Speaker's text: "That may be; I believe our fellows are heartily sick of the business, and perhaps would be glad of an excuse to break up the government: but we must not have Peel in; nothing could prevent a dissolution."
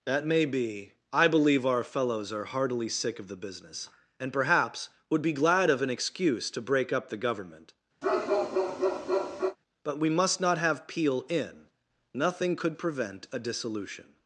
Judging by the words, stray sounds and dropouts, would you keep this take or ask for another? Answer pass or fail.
fail